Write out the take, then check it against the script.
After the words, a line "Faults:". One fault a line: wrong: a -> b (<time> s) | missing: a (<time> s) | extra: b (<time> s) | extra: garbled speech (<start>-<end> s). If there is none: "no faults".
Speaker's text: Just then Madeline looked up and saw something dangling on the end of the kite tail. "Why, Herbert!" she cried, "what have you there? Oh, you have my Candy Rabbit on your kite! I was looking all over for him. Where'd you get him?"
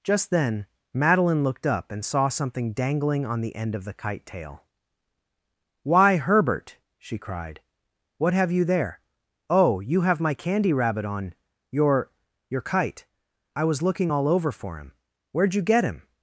Just then Madeline looked up and saw something dangling on the end of the kite tail. "Why, Herbert!" she cried, "what have you there? Oh, you have my Candy Rabbit on your your kite! I was looking all over for him. Where'd you get him?"
Faults:
extra: your (12.5 s)